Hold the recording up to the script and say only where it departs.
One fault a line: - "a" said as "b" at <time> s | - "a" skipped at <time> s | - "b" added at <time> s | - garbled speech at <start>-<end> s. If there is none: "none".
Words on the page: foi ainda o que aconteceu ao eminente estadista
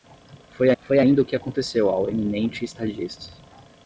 - "foi" added at 0.8 s